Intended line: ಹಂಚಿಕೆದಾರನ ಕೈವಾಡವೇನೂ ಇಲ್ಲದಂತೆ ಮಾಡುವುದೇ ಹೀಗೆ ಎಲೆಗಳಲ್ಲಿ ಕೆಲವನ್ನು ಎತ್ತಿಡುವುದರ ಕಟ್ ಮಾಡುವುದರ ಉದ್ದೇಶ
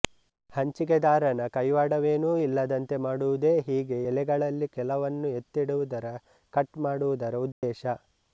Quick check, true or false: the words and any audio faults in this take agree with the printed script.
false